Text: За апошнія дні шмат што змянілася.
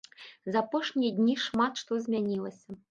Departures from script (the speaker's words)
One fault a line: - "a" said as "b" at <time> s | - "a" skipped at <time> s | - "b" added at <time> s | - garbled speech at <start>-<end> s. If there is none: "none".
none